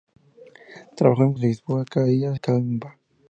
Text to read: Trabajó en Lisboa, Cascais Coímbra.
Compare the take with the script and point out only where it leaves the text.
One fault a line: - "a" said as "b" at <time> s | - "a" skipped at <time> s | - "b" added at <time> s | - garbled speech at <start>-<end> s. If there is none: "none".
none